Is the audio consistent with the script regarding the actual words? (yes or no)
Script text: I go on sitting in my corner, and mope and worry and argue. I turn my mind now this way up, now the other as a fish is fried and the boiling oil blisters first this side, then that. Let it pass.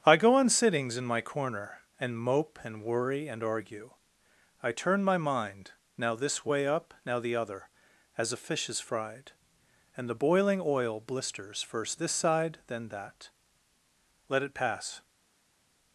no